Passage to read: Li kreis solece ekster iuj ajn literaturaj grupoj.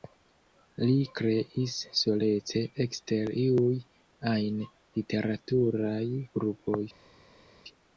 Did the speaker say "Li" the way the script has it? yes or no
yes